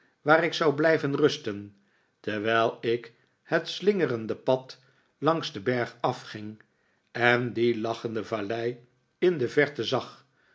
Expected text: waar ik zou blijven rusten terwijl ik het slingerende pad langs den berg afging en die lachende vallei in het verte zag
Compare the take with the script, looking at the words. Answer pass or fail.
fail